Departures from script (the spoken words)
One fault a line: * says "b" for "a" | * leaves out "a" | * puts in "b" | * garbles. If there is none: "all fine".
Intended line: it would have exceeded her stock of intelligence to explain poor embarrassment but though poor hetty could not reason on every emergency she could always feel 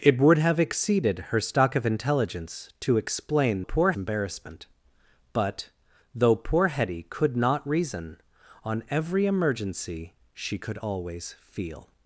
all fine